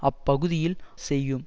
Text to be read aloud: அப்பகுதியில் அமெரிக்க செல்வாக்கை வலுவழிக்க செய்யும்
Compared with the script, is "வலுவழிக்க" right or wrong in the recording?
wrong